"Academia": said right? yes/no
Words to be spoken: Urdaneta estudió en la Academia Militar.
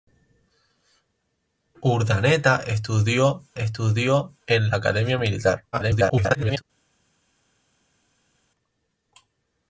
yes